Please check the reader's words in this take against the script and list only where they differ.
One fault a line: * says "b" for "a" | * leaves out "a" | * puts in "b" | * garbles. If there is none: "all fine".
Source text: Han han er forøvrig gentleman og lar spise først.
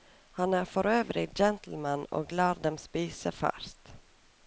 * leaves out "han"
* puts in "dem"